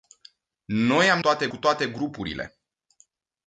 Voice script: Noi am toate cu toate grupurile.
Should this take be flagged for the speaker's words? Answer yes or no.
no